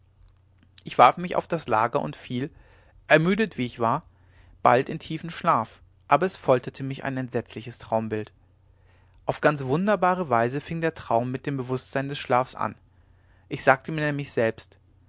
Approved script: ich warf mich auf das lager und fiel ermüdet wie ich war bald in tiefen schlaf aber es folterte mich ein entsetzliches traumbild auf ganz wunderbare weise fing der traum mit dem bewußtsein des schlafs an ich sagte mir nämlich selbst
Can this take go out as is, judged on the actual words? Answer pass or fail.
pass